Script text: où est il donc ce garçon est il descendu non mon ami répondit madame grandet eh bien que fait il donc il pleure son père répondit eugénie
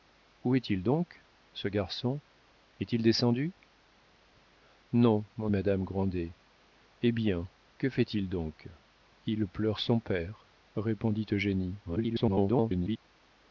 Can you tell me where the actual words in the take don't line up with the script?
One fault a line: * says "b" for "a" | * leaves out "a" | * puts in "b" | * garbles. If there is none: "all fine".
* leaves out "ami répondit"
* garbles